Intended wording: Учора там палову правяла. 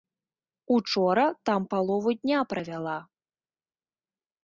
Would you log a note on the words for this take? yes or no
yes